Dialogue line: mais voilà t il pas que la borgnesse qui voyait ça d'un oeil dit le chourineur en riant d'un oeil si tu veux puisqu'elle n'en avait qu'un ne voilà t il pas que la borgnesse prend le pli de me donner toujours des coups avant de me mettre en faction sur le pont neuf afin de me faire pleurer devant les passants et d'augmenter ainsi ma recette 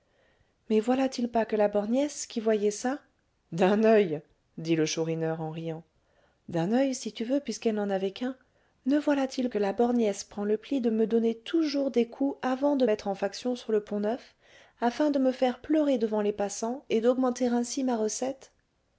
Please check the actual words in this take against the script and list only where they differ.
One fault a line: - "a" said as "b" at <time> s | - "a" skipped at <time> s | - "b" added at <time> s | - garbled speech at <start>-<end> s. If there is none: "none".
- "pas" skipped at 9.5 s
- "me" skipped at 12.9 s